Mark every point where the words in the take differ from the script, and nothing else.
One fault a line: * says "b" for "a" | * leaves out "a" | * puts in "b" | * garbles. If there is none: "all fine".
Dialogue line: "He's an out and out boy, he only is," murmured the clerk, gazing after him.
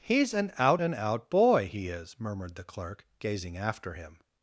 * leaves out "only"